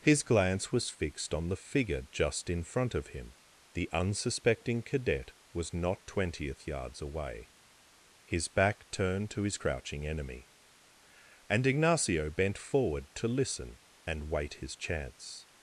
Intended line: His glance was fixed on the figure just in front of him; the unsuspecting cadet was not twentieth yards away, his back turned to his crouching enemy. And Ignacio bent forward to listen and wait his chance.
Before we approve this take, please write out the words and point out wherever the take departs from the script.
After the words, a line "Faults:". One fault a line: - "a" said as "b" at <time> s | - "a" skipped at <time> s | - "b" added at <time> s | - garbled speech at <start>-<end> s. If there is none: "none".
His glance was fixed on the figure just in front of him; the unsuspecting cadet was not twentieth yards away, his back turned to his crouching enemy. And Ignacio bent forward to listen and wait his chance.
Faults:
none